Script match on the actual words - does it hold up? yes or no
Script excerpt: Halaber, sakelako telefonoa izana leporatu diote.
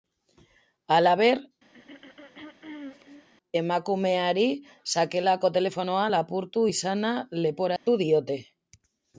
no